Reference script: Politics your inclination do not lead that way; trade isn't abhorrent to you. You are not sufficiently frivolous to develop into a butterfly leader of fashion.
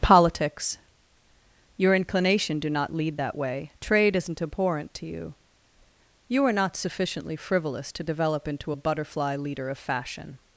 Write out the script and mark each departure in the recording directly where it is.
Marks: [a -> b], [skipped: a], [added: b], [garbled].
Politics your inclination do not lead that way; trade isn't abhorrent to you. You are not sufficiently frivolous to develop into a butterfly leader of fashion.